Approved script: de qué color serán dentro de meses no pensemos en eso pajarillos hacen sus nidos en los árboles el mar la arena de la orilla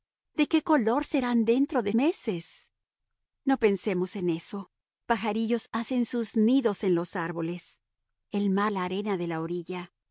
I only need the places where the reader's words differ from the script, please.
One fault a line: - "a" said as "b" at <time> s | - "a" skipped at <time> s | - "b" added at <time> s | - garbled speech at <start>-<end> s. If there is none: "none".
none